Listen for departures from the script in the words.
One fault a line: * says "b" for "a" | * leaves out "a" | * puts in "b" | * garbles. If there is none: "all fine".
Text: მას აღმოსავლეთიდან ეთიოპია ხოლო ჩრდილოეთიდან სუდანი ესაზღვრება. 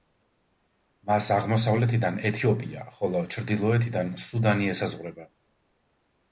all fine